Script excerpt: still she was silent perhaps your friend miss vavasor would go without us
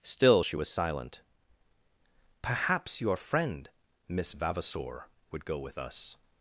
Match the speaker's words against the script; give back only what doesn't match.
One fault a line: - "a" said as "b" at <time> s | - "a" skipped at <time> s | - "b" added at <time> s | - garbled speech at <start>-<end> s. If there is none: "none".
- "without" said as "with" at 5.6 s